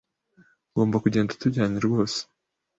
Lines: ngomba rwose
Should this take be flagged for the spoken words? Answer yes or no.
yes